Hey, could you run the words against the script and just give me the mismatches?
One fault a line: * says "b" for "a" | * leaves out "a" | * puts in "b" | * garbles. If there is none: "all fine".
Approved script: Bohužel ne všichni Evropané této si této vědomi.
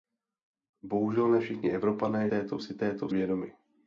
all fine